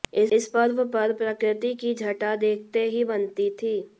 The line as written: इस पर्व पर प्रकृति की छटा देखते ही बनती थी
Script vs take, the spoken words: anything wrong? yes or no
no